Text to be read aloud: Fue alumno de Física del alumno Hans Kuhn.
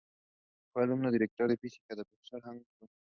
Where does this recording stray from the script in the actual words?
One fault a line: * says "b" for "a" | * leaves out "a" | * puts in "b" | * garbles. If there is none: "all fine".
* puts in "directo"
* says "profesor" for "alumno"